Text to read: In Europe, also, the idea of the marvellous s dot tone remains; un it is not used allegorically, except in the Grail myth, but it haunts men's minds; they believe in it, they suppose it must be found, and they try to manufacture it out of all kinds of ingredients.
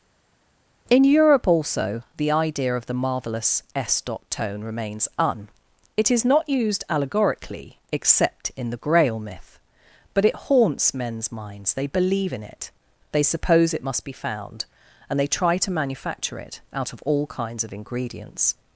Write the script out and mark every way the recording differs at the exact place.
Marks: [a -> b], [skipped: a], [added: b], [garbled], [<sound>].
In Europe, also, the idea of the marvellous s dot tone remains; un it is not used allegorically, except in the Grail myth, but it haunts men's minds; they believe in it, they suppose it must be found, and they try to manufacture it out of all kinds of ingredients.